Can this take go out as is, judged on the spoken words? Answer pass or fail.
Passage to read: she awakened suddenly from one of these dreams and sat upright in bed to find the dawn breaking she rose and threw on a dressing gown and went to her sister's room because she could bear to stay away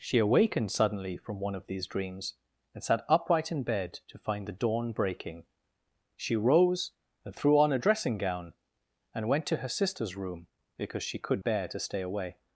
pass